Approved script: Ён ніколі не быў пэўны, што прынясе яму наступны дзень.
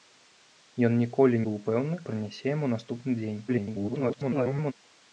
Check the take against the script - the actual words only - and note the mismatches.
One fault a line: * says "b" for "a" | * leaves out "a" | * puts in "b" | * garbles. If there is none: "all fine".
* leaves out "не"
* leaves out "што"
* garbles